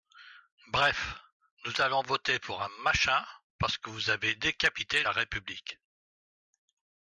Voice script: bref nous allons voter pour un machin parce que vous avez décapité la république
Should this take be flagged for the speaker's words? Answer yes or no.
no